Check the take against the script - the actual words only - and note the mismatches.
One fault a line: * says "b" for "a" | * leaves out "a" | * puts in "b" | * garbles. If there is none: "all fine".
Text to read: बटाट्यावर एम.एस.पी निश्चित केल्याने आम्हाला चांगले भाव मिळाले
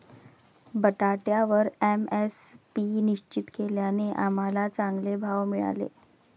all fine